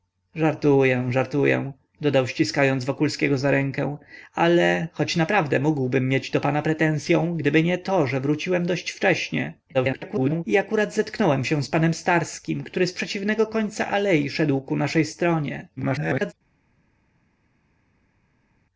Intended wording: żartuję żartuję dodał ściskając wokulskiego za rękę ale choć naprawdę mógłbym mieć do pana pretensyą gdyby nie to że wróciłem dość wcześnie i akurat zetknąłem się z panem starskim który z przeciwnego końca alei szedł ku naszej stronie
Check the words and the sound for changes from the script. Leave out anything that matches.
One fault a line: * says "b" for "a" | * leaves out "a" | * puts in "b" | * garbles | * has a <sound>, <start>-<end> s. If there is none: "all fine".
* garbles
* garbles